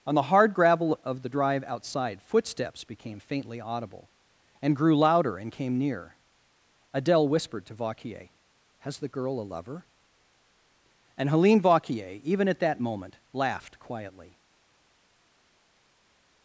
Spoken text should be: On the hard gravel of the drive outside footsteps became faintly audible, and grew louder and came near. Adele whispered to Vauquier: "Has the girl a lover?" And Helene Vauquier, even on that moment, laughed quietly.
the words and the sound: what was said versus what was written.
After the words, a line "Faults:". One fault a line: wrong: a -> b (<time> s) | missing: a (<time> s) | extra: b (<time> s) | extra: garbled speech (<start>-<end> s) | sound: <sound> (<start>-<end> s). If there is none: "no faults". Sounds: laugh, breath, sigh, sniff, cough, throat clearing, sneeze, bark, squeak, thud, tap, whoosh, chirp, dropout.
On the hard gravel of the drive outside footsteps became faintly audible, and grew louder and came near. Adele whispered to Vauquier: "Has the girl a lover?" And Helene Vauquier, even at that moment, laughed quietly.
Faults:
wrong: on -> at (12.5 s)